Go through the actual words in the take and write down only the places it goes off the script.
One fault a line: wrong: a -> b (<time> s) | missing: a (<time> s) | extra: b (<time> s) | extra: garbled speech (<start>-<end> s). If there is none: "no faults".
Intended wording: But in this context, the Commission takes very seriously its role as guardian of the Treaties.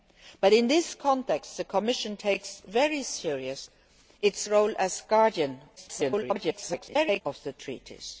extra: garbled speech (5.8-7.2 s)